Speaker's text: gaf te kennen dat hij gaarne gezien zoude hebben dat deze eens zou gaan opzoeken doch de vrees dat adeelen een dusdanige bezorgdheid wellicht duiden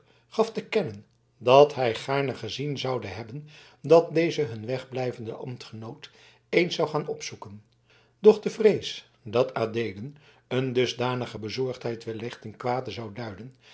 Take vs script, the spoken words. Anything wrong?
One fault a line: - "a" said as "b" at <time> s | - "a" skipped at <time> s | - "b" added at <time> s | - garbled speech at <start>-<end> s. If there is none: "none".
- "hun wegblijvenden ambtgenoot" added at 4.4 s
- "ten kwade zou" added at 12.4 s